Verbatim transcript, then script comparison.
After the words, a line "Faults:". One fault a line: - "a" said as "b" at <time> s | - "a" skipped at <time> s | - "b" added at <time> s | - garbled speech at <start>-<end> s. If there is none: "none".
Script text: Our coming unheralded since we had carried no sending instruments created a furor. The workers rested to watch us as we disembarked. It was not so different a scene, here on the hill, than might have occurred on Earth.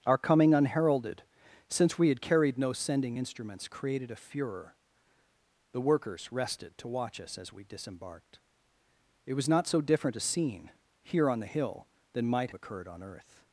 Our coming unheralded since we had carried no sending instruments created a furor. The workers rested to watch us as we disembarked. It was not so different a scene, here on the hill, than might occurred on Earth.
Faults:
- "have" skipped at 12.5 s